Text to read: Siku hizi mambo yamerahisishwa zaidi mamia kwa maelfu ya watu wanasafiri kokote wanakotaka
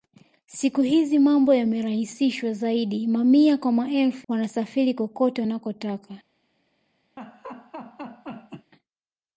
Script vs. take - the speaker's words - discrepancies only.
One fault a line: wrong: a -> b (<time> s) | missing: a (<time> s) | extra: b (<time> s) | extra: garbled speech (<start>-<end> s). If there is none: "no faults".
missing: ya watu (4.3 s)